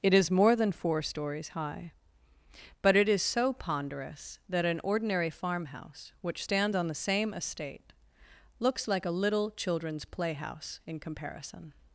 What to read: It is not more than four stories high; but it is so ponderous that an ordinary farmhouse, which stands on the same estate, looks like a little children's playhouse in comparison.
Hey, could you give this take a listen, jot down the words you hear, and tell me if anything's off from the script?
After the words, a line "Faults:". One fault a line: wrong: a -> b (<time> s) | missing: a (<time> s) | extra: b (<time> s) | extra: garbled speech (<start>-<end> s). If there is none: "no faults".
It is more than four stories high; but it is so ponderous that an ordinary farmhouse, which stands on the same estate, looks like a little children's playhouse in comparison.
Faults:
missing: not (0.3 s)